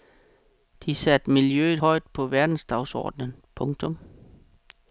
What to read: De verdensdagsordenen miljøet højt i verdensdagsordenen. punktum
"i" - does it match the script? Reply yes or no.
no